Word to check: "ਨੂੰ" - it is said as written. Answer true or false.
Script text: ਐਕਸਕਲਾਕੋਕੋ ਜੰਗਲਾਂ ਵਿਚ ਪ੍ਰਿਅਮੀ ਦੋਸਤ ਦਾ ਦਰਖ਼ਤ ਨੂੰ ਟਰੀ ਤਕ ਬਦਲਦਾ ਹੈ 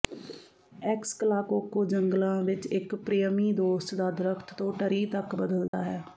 false